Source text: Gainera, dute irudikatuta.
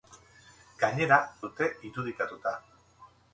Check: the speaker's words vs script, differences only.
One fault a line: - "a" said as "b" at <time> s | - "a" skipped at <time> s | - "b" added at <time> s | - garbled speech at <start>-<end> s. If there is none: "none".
none